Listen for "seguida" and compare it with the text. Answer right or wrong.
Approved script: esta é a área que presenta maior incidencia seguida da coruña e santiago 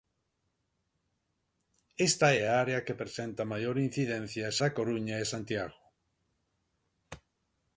wrong